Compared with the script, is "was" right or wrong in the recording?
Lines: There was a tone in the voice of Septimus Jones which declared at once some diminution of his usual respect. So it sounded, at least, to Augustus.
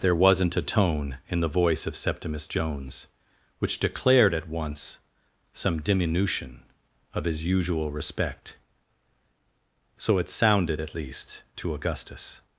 wrong